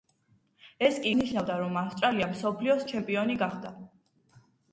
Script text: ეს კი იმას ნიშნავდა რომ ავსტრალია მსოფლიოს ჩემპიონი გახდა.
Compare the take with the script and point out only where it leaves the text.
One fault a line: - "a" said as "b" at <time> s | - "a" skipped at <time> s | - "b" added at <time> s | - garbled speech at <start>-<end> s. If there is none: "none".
- "იმას" skipped at 1.1 s